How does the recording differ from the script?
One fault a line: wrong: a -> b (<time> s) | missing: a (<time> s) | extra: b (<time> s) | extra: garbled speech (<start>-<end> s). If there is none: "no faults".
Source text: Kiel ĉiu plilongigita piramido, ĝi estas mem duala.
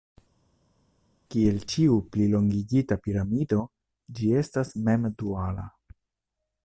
no faults